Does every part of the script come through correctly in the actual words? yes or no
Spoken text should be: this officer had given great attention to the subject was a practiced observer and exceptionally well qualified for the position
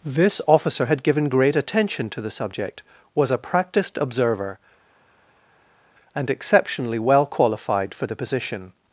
yes